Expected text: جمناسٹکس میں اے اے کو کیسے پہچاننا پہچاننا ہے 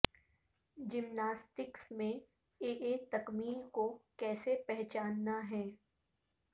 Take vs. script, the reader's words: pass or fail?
fail